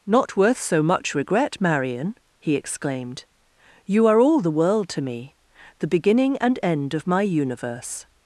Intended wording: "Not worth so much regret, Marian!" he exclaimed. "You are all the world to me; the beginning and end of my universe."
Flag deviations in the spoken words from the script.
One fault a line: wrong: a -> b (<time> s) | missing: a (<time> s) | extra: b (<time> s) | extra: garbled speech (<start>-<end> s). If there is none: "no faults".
no faults